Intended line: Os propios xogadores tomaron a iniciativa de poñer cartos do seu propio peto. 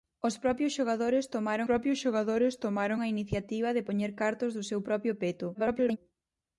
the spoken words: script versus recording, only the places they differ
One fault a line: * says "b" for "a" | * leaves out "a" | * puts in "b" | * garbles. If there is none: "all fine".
* puts in "propios xogadores tomaron"
* garbles